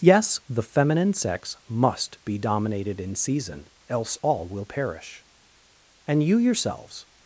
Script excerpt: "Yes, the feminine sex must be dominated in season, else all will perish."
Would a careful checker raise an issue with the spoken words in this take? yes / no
yes